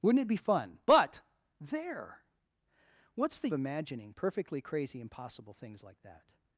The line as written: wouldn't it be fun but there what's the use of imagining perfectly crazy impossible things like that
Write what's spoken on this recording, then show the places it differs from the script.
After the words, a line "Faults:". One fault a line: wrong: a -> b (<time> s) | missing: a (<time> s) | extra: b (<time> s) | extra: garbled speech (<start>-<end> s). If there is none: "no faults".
wouldn't it be fun but there what's the imagining perfectly crazy impossible things like that
Faults:
missing: use of (3.5 s)